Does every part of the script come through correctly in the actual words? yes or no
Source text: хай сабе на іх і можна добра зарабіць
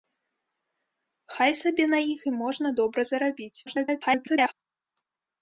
no